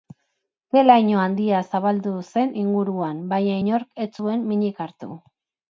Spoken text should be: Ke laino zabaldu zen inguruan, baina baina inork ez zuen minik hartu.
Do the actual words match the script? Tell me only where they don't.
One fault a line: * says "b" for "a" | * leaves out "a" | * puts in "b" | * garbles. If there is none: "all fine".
* puts in "handia"
* leaves out "baina"